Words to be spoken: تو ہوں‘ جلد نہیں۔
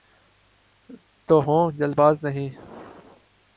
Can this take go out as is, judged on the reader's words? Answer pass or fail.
fail